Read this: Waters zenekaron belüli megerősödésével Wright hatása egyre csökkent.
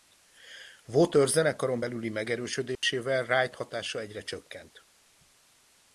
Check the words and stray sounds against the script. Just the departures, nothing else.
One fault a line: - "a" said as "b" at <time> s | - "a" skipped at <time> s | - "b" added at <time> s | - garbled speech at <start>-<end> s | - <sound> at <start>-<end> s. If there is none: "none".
- dropout at 2.8-2.8 s